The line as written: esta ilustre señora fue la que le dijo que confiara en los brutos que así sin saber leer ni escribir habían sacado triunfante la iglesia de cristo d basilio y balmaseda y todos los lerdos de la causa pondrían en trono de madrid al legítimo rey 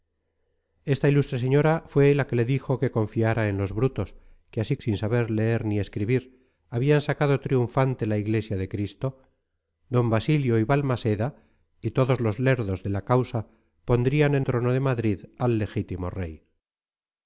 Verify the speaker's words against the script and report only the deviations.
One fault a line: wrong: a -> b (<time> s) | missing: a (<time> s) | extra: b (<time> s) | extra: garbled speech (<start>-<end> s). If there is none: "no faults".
no faults